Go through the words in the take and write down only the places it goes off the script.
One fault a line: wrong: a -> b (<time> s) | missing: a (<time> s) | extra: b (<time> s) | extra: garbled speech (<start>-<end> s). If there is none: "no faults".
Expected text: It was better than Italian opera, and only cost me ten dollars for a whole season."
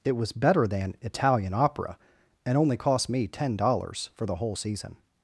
wrong: a -> the (4.2 s)